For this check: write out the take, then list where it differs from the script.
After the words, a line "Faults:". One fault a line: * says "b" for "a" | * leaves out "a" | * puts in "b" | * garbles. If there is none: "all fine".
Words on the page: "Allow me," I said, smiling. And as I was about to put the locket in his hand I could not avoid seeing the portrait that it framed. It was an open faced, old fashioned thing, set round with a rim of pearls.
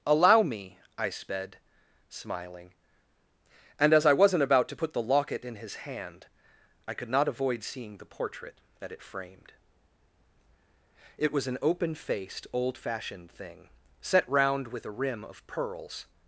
"Allow me," I sped, smiling. And as I wasn't about to put the locket in his hand I could not avoid seeing the portrait that it framed. It was an open faced, old fashioned thing, set round with a rim of pearls.
Faults:
* says "sped" for "said"
* says "wasn't" for "was"